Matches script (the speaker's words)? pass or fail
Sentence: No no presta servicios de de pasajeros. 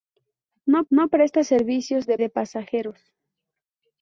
pass